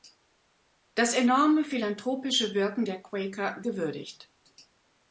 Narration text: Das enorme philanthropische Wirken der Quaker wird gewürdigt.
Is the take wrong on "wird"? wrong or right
wrong